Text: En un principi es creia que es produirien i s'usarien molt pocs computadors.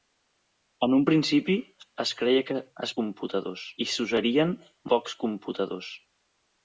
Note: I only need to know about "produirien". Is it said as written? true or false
false